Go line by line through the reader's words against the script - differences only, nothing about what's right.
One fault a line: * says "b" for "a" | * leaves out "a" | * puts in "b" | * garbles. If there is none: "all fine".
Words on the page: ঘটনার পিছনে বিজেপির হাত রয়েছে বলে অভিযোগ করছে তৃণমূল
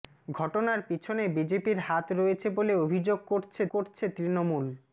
* puts in "করছে"